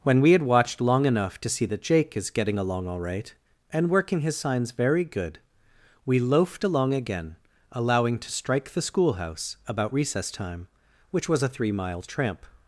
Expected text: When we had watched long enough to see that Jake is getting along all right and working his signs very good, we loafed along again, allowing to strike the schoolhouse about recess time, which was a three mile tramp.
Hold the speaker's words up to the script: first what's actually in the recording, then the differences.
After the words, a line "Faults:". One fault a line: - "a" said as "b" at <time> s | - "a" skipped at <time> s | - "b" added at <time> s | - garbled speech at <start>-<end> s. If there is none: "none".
When we had watched long enough to see that Jake is getting along all right and working his signs very good, we loafed along again, allowing to strike the schoolhouse about recess time, which was a three mile tramp.
Faults:
none